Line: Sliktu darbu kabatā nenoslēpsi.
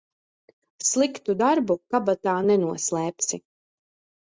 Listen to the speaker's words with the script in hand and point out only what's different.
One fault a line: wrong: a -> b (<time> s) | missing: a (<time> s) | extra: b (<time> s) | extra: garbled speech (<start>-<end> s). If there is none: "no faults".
no faults